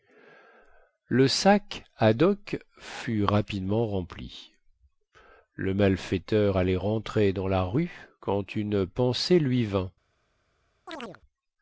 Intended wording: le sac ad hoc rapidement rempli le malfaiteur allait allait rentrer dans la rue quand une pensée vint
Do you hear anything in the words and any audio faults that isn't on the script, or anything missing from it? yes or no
yes